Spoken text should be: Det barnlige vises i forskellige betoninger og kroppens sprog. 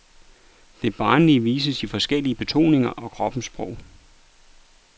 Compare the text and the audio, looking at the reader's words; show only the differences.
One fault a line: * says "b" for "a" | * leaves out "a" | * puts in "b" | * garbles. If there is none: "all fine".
all fine